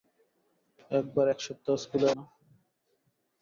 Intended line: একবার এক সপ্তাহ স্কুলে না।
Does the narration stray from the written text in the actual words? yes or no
no